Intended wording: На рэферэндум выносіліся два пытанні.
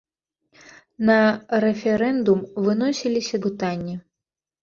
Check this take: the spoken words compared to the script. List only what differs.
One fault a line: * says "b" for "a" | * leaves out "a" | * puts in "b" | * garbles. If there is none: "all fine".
* leaves out "два"